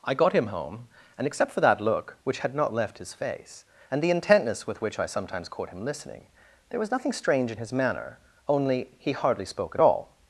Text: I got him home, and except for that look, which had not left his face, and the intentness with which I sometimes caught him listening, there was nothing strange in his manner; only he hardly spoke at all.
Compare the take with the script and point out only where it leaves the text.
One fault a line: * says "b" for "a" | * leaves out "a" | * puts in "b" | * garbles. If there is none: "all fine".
all fine